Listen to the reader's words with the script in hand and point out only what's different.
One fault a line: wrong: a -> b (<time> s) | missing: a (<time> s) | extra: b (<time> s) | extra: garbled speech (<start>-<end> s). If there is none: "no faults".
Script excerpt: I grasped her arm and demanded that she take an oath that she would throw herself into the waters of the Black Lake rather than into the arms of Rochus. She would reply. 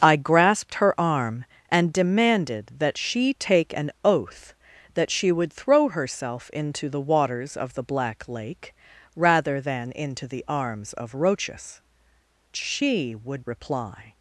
no faults